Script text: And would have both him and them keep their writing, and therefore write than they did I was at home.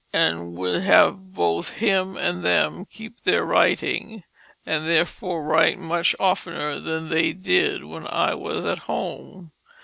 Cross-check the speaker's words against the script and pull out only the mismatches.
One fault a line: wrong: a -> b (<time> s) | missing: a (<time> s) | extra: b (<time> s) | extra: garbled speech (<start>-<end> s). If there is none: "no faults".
extra: much oftener (5.8 s)
extra: when (7.8 s)